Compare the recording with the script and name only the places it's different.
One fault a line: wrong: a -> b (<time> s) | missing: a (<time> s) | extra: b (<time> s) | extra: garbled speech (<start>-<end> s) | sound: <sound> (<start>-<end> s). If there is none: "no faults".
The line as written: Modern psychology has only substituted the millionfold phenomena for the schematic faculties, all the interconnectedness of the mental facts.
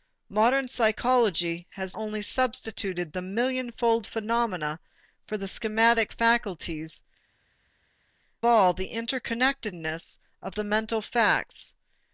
no faults